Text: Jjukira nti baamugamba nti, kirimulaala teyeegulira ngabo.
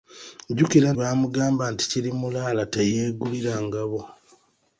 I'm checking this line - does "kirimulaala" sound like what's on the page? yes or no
yes